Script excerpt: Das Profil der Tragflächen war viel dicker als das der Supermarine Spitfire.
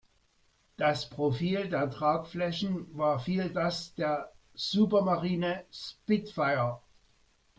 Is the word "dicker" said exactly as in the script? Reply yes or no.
no